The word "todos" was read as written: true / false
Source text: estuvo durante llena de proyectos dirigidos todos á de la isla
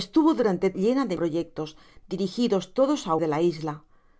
true